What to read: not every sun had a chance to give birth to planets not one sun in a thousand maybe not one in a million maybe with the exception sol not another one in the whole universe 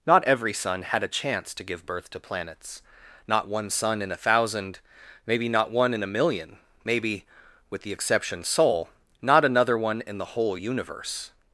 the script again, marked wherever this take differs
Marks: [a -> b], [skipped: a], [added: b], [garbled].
not every sun had a chance to give birth to planets not one sun in a thousand maybe not one in a million maybe with the exception sol not another one in the whole universe